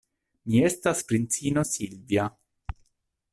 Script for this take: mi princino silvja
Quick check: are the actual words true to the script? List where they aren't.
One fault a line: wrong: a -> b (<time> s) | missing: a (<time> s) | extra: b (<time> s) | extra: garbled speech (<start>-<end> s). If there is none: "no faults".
extra: estas (0.7 s)